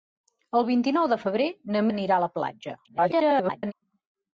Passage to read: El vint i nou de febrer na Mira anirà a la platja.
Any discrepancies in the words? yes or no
yes